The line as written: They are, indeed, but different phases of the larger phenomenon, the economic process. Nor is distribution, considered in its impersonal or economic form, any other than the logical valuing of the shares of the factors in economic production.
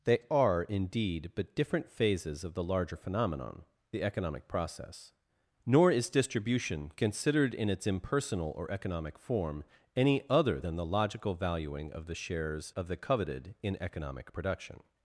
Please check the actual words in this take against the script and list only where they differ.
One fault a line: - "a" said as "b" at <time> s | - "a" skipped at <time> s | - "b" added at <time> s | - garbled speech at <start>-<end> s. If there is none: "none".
- "factors" said as "coveted" at 13.0 s